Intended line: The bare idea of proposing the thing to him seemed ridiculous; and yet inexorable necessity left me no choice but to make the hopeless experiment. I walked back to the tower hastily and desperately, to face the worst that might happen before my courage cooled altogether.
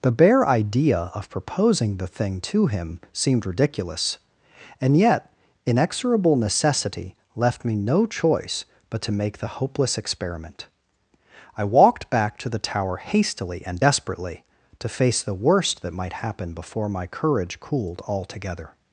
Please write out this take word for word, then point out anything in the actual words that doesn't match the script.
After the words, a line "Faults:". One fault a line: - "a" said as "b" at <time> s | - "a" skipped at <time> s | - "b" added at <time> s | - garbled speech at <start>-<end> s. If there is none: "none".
The bare idea of proposing the thing to him seemed ridiculous; and yet inexorable necessity left me no choice but to make the hopeless experiment. I walked back to the tower hastily and desperately, to face the worst that might happen before my courage cooled altogether.
Faults:
none